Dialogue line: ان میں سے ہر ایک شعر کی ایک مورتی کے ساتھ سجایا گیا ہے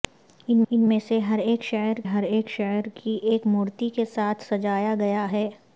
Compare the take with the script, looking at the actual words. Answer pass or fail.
fail